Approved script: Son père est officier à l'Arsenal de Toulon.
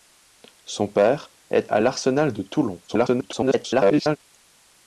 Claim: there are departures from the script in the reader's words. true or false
true